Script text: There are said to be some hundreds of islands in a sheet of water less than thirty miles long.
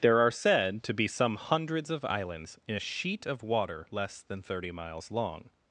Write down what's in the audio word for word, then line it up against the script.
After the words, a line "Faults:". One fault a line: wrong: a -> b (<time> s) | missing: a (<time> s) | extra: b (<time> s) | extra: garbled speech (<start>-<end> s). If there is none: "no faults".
There are said to be some hundreds of islands in a sheet of water less than thirty miles long.
Faults:
no faults